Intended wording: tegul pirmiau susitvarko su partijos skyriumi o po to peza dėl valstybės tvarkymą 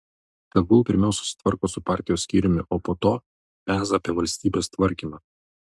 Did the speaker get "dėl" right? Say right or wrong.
wrong